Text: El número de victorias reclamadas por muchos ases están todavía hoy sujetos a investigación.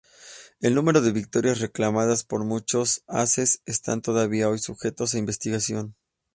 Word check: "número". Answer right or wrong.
right